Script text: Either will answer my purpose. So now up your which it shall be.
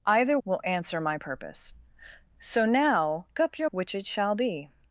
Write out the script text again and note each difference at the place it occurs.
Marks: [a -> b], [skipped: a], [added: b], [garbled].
Either will answer my purpose. So now up your which it shall be.